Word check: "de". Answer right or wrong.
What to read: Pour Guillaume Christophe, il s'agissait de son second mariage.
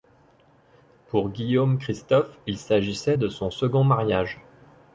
right